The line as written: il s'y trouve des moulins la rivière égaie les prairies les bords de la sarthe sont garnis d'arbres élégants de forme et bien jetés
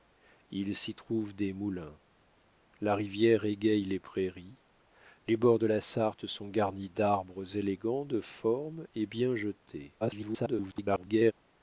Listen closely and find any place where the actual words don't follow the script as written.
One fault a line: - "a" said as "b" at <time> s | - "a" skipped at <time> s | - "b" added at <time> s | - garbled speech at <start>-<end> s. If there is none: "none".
- garbled speech at 10.0-11.3 s